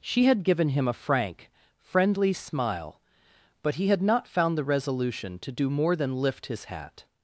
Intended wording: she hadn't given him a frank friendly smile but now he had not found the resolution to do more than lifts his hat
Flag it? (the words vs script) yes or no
yes